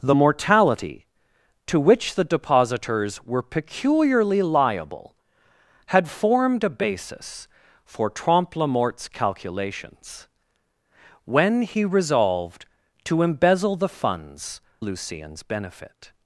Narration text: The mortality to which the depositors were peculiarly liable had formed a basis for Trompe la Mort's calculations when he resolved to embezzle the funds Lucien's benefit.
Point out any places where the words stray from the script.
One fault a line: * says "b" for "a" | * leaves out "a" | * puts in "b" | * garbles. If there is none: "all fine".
all fine